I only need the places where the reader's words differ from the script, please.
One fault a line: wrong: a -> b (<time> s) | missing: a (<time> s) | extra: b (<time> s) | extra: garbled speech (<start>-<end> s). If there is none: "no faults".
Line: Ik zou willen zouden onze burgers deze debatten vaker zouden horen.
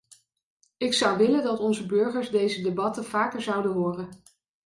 wrong: zouden -> dat (1.4 s)